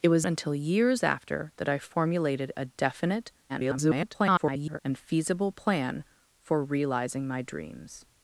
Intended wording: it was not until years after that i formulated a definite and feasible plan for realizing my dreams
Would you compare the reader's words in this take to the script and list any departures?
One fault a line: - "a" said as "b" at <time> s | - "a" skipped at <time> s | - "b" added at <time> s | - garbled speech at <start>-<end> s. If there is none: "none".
- "not" skipped at 0.2 s
- garbled speech at 3.5-4.8 s